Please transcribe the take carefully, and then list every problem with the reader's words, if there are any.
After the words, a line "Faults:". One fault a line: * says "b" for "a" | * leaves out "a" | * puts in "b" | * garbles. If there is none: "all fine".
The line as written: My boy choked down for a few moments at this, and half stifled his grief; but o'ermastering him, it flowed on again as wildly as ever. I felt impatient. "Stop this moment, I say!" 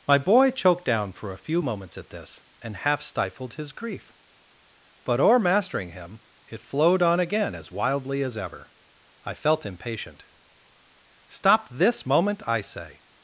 My boy choked down for a few moments at this, and half stifled his grief; but o'ermastering him, it flowed on again as wildly as ever. I felt impatient. "Stop this moment, I say!"
Faults:
all fine